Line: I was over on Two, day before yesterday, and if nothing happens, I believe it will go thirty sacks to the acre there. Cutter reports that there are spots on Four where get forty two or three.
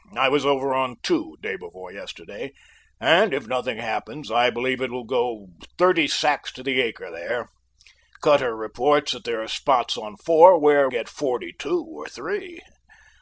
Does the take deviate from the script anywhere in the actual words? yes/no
no